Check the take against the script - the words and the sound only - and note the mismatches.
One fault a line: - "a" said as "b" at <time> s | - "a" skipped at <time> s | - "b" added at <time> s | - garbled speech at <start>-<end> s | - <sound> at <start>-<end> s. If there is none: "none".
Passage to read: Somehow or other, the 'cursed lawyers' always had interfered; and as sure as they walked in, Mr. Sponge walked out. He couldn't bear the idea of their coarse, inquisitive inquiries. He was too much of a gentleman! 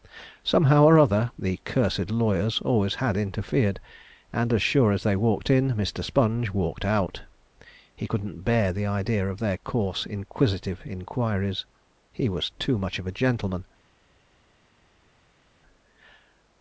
none